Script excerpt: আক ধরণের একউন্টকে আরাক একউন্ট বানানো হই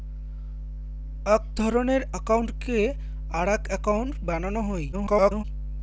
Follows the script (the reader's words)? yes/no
no